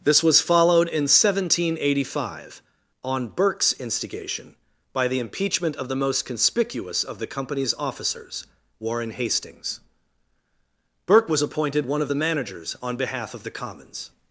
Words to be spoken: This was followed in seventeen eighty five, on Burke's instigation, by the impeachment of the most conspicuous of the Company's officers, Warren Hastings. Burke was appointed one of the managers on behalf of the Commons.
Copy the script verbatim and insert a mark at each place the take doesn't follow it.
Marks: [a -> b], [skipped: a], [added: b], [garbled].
This was followed in seventeen eighty five, on Burke's instigation, by the impeachment of the most conspicuous of the Company's officers, Warren Hastings. Burke was appointed one of the managers on behalf of the Commons.